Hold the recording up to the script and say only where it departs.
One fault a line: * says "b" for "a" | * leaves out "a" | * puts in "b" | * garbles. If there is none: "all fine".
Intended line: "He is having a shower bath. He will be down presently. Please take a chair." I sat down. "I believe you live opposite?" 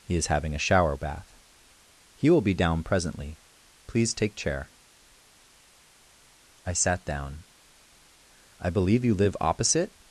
* leaves out "a"